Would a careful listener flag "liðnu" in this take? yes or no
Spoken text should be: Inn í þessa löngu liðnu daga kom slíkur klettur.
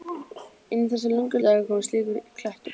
yes